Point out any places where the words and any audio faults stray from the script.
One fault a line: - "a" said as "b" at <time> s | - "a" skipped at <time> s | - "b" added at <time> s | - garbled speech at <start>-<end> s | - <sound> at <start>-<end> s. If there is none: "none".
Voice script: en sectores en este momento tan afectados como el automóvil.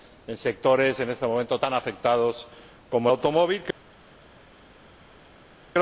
none